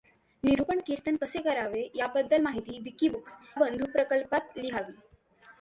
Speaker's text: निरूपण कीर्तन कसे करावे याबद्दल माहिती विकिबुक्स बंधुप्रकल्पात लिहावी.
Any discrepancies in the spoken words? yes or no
no